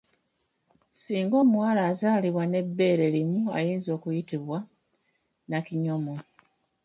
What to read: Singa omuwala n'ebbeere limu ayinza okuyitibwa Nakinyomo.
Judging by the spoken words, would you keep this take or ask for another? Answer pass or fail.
fail